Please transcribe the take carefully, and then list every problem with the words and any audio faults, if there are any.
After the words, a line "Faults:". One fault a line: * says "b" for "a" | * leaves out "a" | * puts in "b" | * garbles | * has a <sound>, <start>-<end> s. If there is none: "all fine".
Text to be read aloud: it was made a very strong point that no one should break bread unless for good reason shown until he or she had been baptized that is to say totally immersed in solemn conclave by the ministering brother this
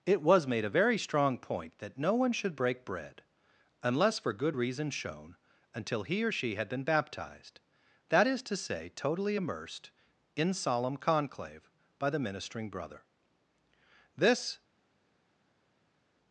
it was made a very strong point that no one should break bread unless for good reason shown until he or she had been baptized that is to say totally immersed in solemn conclave by the ministering brother this
Faults:
all fine